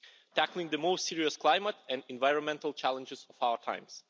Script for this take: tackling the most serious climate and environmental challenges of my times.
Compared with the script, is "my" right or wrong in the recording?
wrong